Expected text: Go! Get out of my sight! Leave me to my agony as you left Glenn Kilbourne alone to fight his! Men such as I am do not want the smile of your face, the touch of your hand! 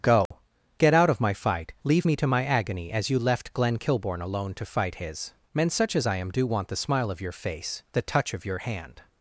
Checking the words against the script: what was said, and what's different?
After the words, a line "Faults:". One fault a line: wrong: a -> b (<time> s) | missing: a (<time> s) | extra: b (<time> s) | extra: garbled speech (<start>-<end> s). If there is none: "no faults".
Go! Get out of my fight! Leave me to my agony as you left Glenn Kilbourne alone to fight his! Men such as I am do want the smile of your face, the touch of your hand!
Faults:
wrong: sight -> fight (1.3 s)
missing: not (6.4 s)